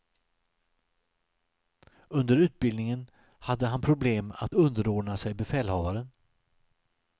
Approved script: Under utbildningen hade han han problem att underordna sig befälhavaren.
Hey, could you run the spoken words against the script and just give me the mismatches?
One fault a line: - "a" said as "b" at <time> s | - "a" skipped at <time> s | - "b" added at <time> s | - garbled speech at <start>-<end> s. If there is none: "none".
- "han" skipped at 3.8 s